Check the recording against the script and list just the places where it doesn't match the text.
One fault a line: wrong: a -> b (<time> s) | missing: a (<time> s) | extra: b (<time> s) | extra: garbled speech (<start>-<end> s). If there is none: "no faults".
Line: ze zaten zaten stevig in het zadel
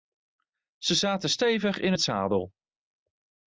missing: zaten (1.3 s)